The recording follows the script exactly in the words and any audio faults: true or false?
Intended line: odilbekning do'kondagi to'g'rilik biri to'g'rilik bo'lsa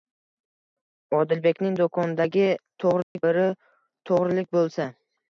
false